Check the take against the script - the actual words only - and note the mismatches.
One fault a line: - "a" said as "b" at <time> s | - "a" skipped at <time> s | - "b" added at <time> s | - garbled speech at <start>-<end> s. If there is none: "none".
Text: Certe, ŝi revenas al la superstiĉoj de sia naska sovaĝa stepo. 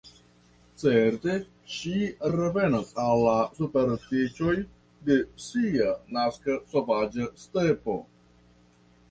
none